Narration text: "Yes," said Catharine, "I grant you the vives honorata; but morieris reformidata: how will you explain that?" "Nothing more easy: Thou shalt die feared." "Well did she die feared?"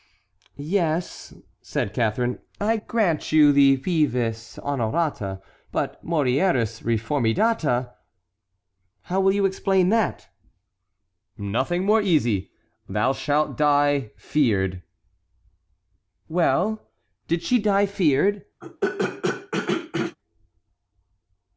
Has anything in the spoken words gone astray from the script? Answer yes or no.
no